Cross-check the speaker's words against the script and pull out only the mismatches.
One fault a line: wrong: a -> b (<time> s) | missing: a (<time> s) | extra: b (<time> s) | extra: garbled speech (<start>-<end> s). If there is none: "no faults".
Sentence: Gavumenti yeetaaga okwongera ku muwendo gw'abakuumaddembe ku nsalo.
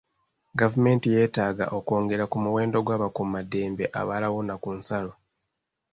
extra: abalawuna (4.0 s)